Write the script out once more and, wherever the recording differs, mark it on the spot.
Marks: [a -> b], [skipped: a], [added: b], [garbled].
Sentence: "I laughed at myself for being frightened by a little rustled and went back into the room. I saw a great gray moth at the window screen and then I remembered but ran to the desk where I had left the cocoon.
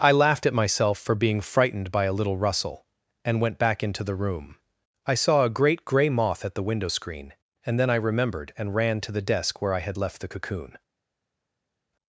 "I laughed at myself for being frightened by a little [rustled -> rustle] and went back into the room. I saw a great gray moth at the window screen and then I remembered [but -> and] ran to the desk where I had left the cocoon.